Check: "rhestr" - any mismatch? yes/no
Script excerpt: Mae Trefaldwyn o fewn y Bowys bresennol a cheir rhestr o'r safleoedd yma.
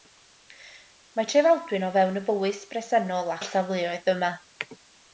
yes